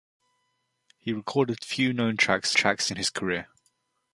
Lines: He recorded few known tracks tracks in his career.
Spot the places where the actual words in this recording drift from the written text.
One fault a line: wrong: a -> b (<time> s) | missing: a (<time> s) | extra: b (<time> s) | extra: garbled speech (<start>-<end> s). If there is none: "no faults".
no faults